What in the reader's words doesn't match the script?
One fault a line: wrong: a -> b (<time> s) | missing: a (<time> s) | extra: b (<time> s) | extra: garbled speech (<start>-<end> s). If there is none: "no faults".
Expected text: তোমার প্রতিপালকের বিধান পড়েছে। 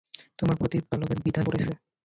no faults